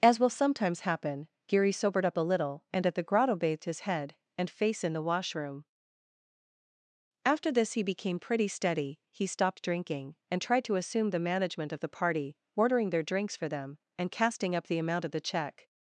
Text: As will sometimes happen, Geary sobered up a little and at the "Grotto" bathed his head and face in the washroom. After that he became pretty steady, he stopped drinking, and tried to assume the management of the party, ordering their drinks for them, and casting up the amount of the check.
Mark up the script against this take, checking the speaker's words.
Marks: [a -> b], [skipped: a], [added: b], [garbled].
As will sometimes happen, Geary sobered up a little and at the "Grotto" bathed his head and face in the washroom. After [that -> this] he became pretty steady, he stopped drinking, and tried to assume the management of the party, ordering their drinks for them, and casting up the amount of the check.